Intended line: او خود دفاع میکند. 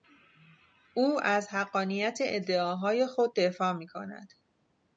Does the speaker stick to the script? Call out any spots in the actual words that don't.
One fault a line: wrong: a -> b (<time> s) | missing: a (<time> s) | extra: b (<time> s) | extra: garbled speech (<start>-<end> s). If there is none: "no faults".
extra: از حقانیت ادعاهای (1.2 s)